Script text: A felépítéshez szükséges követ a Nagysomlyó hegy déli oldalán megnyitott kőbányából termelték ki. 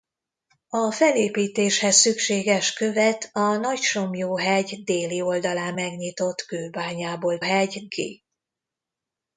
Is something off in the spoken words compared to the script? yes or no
yes